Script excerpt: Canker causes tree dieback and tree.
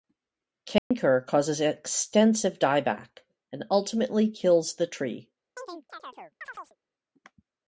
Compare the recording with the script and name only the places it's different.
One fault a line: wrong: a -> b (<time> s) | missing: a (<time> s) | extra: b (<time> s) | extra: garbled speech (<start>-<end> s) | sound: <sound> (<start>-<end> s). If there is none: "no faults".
sound: dropout (0.8-0.9 s)
wrong: tree -> extensive (1.6 s)
extra: ultimately kills the (3.7 s)
sound: chirp (5.6-6.8 s)